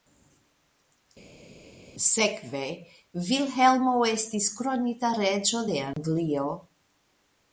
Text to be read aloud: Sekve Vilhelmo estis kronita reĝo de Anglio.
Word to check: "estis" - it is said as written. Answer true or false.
true